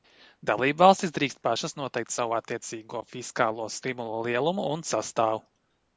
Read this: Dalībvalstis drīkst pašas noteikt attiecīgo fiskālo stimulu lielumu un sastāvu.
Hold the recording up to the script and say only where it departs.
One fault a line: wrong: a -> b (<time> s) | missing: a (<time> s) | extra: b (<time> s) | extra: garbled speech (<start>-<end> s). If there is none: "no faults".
extra: savu (2.1 s)